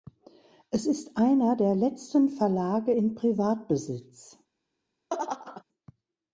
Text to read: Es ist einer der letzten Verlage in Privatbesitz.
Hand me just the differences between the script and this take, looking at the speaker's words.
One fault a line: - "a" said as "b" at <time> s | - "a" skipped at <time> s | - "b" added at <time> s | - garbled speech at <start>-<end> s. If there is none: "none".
none